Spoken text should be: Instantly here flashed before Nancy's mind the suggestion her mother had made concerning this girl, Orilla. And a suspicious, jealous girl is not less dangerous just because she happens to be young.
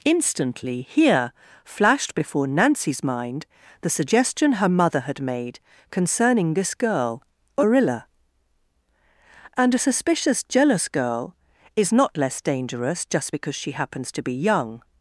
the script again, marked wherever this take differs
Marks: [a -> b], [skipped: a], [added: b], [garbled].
Instantly here flashed before Nancy's mind the suggestion her mother had made concerning this girl, Orilla. And a suspicious, jealous girl is not less dangerous just because she happens to be young.